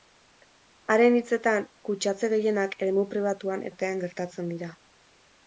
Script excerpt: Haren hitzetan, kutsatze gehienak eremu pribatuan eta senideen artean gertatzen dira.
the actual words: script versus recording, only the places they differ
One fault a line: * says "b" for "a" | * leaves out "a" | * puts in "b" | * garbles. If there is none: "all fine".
* leaves out "eta senideen"